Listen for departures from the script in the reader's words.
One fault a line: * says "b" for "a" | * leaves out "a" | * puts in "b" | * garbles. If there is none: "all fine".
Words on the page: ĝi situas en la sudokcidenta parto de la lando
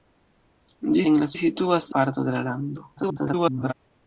* leaves out "situas"
* says "situas" for "sudokcidenta"
* garbles